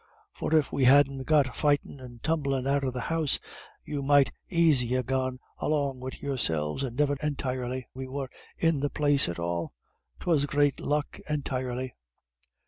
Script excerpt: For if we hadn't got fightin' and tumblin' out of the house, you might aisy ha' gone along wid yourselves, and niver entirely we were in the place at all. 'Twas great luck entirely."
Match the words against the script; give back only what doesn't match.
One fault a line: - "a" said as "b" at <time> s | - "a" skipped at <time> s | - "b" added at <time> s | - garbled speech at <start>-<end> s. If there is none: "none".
none